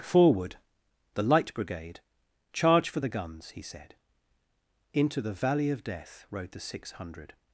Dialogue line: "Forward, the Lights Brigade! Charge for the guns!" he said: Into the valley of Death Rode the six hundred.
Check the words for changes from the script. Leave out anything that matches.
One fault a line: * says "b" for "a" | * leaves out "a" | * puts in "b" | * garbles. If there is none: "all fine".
* says "Light" for "Lights"